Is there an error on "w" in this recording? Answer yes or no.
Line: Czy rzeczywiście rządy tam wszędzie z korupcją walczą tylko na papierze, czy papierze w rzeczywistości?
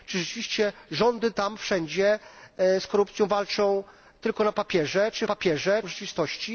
no